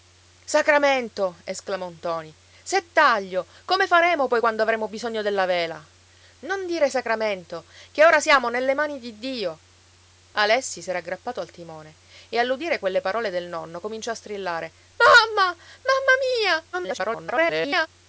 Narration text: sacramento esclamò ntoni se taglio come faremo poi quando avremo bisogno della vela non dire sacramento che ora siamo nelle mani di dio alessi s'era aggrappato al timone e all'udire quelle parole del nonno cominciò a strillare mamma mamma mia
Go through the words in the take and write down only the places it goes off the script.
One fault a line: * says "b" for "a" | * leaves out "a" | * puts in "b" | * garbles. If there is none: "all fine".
* garbles